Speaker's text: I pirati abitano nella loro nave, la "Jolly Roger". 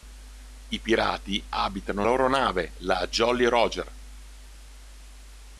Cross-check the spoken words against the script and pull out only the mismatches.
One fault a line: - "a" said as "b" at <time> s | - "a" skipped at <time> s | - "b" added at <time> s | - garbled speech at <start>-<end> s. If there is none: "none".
- "nella" skipped at 2.0 s